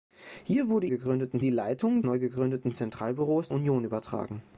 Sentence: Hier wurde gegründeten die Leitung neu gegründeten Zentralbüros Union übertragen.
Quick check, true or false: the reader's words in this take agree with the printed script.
true